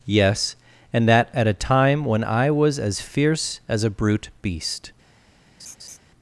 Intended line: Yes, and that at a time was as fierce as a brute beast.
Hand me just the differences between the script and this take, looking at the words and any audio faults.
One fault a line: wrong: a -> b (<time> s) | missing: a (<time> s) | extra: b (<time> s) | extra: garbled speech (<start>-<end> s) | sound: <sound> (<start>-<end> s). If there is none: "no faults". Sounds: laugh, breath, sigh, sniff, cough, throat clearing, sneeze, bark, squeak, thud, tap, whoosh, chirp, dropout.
extra: when I (2.0 s)
sound: laugh (5.6-6.0 s)